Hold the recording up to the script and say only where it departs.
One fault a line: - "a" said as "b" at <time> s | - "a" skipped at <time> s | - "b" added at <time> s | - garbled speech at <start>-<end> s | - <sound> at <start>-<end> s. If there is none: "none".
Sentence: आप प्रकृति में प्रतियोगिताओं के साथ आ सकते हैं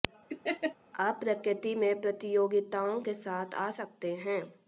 - laugh at 0.3-0.8 s